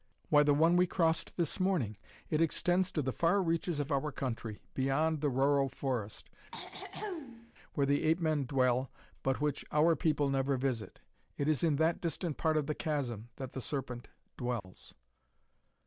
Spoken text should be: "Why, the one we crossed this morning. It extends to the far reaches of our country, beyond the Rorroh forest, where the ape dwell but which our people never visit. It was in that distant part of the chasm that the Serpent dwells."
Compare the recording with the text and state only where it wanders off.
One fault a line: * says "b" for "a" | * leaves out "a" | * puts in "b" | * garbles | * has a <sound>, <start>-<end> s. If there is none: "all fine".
* has a throat clearing, 6.5-7.5 s
* puts in "men"
* says "is" for "was"
* has a dropout, 14.6-14.6 s